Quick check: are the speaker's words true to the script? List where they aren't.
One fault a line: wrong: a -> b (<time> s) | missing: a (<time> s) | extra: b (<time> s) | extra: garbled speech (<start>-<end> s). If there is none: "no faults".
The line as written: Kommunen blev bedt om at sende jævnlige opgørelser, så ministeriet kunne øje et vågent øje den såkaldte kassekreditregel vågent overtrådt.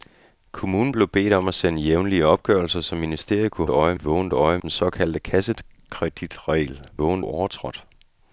no faults